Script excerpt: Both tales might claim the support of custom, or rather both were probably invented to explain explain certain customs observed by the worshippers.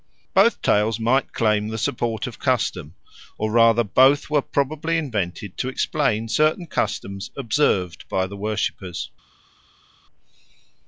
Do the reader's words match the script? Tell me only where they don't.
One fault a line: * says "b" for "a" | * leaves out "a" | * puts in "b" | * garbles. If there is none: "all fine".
* leaves out "explain"